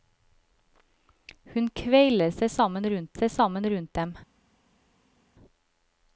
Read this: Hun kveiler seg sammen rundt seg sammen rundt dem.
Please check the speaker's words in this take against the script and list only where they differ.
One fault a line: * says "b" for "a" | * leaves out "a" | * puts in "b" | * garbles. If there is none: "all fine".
all fine